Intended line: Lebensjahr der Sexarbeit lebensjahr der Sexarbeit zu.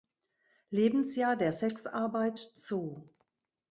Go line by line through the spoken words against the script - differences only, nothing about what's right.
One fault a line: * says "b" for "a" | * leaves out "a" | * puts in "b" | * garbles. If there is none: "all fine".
* leaves out "lebensjahr der Sexarbeit"